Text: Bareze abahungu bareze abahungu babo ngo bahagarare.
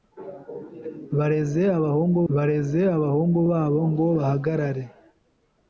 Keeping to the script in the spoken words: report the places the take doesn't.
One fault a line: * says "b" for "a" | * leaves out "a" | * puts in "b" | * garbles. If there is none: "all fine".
all fine